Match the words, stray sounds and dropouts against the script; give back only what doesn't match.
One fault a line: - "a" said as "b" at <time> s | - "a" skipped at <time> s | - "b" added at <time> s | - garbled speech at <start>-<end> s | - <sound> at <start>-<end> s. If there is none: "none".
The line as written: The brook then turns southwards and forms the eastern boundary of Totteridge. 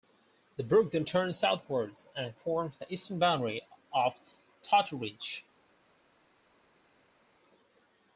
none